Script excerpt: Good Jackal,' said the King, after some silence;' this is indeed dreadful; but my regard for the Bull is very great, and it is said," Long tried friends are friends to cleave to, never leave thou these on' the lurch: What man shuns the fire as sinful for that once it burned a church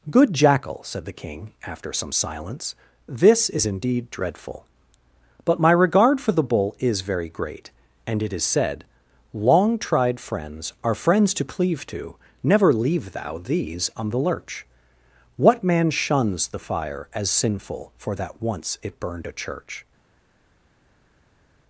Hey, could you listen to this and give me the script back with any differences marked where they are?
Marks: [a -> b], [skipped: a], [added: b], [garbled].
Good Jackal,' said the King, after some silence;' this is indeed dreadful; but my regard for the Bull is very great, and it is said," Long tried friends are friends to cleave to, never leave thou these on' the lurch: What man shuns the fire as sinful for that once it burned a church